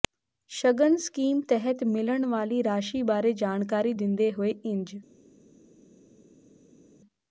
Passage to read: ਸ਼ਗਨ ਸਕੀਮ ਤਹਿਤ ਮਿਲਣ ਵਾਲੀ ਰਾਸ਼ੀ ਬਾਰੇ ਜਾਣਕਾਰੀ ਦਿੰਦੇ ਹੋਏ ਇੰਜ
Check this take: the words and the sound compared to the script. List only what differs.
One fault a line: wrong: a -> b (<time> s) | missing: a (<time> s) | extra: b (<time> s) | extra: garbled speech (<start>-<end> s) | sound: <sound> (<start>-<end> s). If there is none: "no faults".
no faults